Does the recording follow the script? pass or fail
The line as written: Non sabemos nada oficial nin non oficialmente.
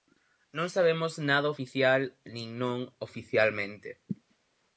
pass